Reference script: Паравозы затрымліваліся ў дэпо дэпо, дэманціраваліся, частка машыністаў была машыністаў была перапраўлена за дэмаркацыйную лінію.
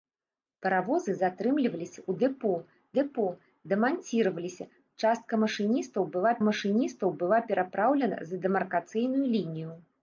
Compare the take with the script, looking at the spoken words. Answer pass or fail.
pass